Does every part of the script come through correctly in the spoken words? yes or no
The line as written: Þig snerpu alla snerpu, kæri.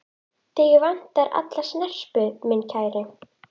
no